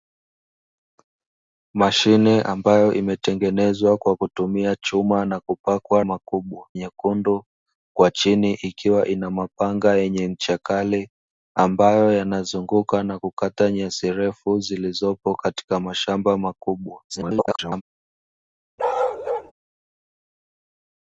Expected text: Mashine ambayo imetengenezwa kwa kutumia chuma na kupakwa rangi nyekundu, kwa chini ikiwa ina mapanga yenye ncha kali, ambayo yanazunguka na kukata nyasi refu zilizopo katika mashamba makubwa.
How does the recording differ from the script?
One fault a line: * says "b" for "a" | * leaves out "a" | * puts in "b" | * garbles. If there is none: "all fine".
* says "makubwa" for "rangi"
* garbles